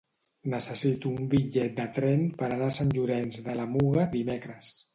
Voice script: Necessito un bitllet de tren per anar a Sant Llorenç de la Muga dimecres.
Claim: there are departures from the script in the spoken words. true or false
false